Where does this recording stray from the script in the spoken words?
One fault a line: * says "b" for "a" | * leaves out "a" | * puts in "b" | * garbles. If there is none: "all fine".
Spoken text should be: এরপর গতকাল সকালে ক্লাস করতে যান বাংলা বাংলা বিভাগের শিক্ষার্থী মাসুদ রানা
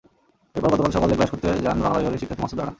* leaves out "বাংলা"